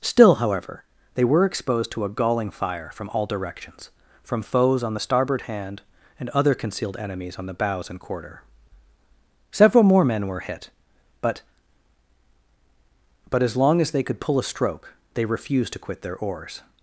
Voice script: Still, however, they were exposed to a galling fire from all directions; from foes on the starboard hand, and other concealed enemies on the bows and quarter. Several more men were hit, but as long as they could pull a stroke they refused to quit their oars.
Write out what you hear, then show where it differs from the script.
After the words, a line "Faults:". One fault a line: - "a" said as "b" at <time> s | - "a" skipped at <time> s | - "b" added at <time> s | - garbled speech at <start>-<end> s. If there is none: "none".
Still, however, they were exposed to a galling fire from all directions; from foes on the starboard hand, and other concealed enemies on the bows and quarter. Several more men were hit, but but as long as they could pull a stroke they refused to quit their oars.
Faults:
- "but" added at 13.3 s